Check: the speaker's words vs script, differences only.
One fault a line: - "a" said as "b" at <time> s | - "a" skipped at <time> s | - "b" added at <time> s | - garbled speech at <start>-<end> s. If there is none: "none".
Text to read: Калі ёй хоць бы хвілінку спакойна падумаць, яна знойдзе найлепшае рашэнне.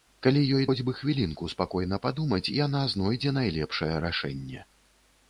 none